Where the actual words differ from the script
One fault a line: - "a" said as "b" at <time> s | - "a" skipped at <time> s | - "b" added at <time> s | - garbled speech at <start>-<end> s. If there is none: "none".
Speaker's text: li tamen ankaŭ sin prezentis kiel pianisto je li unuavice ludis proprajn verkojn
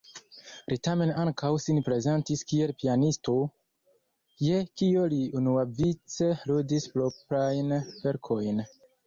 - "kio" added at 4.8 s